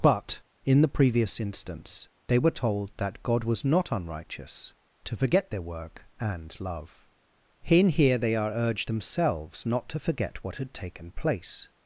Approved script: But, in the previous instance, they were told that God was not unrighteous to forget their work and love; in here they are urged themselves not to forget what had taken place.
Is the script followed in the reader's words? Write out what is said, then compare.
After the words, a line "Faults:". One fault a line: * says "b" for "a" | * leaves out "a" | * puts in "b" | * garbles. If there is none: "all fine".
But, in the previous instance, they were told that God was not unrighteous to forget their work and love; in here they are urged themselves not to forget what had taken place.
Faults:
all fine